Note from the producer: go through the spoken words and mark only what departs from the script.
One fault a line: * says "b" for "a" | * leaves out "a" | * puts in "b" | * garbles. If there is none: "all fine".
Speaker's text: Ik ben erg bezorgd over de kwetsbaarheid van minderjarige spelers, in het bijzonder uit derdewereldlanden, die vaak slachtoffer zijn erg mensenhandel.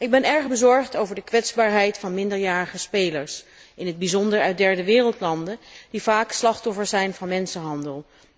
* says "van" for "erg"